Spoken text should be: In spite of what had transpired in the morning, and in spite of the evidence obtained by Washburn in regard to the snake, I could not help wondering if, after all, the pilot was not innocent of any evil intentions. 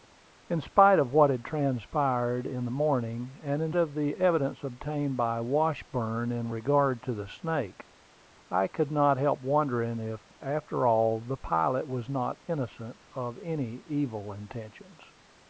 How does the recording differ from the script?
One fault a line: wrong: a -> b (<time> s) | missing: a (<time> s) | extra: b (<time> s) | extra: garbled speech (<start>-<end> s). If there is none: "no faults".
missing: spite (3.7 s)